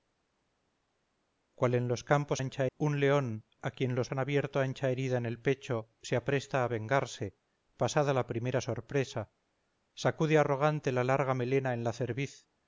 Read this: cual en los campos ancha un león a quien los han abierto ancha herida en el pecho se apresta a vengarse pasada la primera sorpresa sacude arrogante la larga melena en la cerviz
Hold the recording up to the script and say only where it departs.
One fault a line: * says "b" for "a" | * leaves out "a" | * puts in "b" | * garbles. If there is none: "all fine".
all fine